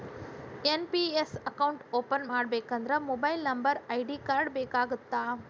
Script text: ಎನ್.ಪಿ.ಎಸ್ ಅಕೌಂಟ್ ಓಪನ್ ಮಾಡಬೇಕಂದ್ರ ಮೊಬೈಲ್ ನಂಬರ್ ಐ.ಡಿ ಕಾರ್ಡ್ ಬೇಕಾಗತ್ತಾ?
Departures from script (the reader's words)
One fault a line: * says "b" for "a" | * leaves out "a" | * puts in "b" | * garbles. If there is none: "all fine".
all fine